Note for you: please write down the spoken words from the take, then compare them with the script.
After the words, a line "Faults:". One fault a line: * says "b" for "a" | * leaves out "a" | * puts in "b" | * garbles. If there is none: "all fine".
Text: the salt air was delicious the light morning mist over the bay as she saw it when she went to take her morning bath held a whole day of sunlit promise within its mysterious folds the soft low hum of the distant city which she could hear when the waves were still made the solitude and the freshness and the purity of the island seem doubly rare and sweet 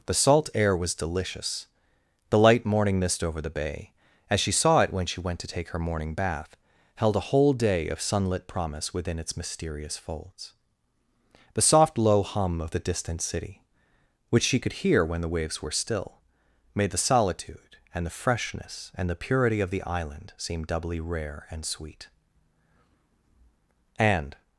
the salt air was delicious the light morning mist over the bay as she saw it when she went to take her morning bath held a whole day of sunlit promise within its mysterious folds the soft low hum of the distant city which she could hear when the waves were still made the solitude and the freshness and the purity of the island seem doubly rare and sweet and
Faults:
* puts in "and"